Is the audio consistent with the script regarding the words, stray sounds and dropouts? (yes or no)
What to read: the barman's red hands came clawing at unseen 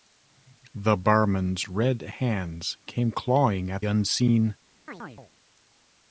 no